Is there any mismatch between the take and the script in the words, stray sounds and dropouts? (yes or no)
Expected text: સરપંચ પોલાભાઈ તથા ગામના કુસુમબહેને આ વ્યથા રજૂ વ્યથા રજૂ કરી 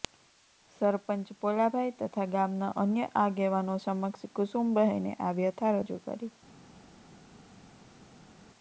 yes